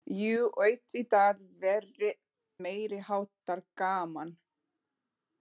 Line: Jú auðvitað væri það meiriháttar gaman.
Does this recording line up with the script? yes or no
no